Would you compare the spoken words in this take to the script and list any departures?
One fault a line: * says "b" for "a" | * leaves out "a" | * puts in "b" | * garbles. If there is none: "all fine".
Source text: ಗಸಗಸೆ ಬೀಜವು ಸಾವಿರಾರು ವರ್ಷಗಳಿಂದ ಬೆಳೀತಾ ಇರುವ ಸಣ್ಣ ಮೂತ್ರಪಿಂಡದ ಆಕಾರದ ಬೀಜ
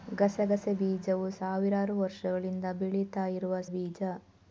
* leaves out "ಸಣ್ಣ ಮೂತ್ರಪಿಂಡದ ಆಕಾರದ"